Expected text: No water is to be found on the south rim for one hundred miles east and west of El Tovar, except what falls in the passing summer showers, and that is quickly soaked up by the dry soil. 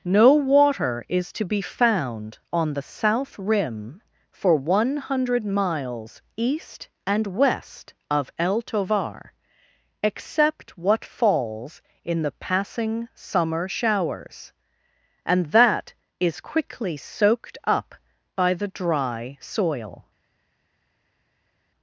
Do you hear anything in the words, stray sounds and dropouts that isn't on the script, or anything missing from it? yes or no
no